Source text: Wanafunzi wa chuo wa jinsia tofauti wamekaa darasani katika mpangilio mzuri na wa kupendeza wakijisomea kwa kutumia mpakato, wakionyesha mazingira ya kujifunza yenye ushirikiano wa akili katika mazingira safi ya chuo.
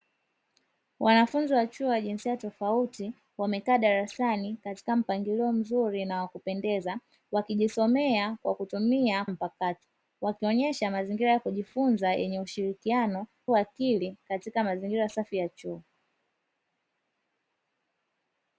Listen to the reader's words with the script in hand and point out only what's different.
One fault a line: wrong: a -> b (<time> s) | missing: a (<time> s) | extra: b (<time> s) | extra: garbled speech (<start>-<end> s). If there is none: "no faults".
no faults